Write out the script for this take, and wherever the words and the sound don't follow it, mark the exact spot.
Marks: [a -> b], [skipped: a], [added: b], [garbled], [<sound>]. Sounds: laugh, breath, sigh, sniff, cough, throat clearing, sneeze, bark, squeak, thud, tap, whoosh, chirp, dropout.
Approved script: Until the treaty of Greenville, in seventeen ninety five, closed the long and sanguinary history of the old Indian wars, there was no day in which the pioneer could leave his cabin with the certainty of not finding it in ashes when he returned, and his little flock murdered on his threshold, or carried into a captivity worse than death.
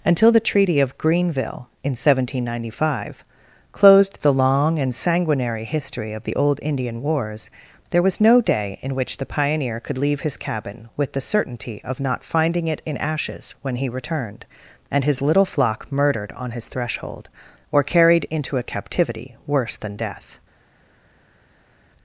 Until the treaty of Greenville, in seventeen ninety five, closed the long and sanguinary history of the old Indian wars, there was no day in which the pioneer could leave his cabin with the certainty of not finding it in ashes when he returned, and his little flock murdered on his threshold, or carried into a captivity worse than death.